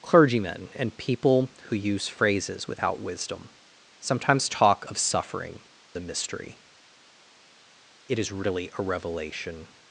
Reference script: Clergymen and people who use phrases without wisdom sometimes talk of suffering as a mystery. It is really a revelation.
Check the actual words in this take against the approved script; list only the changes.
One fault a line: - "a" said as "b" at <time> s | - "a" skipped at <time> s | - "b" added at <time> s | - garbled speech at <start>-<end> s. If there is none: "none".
- "as" skipped at 5.6 s